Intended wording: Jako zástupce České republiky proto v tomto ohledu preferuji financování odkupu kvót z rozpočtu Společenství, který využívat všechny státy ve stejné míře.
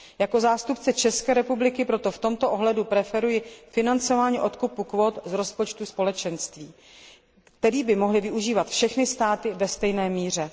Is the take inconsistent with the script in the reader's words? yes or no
yes